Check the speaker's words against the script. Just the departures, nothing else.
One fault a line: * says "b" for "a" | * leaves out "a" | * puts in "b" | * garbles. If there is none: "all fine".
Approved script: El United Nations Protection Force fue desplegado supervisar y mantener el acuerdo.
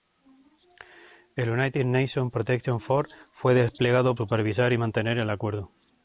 all fine